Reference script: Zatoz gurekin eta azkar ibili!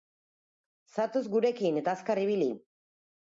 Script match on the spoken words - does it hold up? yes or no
yes